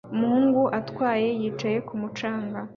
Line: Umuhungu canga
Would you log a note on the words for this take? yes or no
yes